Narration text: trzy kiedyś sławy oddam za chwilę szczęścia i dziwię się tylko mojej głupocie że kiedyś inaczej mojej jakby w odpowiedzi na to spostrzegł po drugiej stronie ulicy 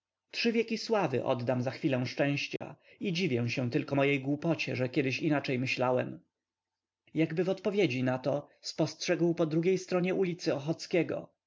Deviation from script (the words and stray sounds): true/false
true